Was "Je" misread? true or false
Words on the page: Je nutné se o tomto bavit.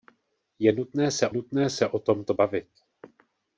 false